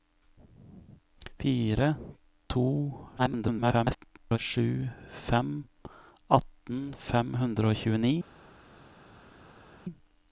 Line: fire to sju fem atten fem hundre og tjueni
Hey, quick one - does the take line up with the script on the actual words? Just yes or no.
no